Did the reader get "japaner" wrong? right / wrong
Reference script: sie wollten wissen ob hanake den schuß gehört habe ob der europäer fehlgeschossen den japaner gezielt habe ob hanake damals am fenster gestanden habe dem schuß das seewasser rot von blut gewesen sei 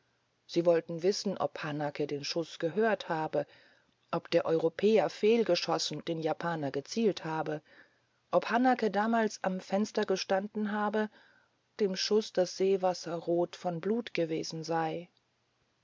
right